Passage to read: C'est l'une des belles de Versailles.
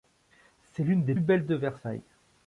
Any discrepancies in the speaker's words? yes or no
no